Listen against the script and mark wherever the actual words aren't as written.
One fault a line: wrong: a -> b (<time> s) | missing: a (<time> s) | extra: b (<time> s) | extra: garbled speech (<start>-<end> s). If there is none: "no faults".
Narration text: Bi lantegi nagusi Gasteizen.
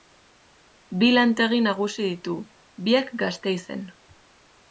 extra: ditu biak (2.1 s)